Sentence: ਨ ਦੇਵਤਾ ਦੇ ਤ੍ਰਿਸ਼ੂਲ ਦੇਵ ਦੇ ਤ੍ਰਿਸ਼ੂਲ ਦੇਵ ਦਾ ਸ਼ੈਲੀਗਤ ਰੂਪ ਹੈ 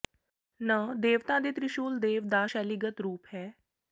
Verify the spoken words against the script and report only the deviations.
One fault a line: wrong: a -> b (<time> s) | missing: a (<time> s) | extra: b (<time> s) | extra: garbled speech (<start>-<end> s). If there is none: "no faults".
missing: ਦੇ ਤ੍ਰਿਸ਼ੂਲ ਦੇਵ (2.3 s)